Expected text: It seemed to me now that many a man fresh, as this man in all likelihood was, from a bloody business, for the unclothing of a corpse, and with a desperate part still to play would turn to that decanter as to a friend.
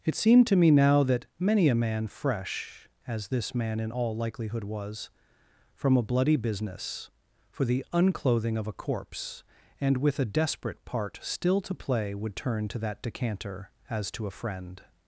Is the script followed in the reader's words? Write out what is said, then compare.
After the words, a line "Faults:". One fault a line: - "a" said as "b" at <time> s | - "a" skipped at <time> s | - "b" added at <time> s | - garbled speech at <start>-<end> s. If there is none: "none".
It seemed to me now that many a man fresh, as this man in all likelihood was, from a bloody business, for the unclothing of a corpse, and with a desperate part still to play would turn to that decanter as to a friend.
Faults:
none